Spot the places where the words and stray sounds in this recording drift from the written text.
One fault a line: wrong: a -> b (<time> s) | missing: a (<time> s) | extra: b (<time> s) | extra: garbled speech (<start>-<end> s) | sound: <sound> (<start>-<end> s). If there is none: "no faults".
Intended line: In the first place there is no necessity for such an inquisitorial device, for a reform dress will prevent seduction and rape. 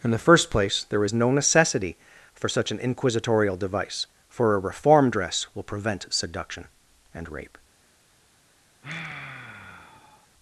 sound: sigh (8.8-10.3 s)